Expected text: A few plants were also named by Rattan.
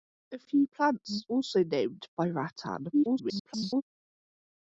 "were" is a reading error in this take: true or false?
true